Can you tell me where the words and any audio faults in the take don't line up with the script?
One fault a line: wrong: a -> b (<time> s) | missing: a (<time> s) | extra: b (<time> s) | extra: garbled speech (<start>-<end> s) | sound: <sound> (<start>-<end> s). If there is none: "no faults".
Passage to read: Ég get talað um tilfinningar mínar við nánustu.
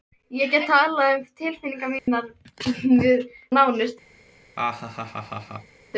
sound: dropout (2.0-2.1 s)
sound: laugh (4.6-5.8 s)